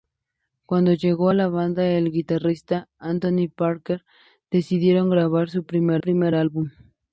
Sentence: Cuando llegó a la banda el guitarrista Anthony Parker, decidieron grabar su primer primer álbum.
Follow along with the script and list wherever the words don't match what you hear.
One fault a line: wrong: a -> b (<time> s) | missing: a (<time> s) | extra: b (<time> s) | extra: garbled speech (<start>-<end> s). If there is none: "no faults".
no faults